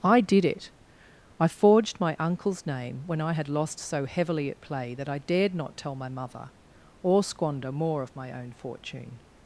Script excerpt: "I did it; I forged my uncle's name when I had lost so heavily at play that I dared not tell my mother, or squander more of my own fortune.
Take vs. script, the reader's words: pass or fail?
pass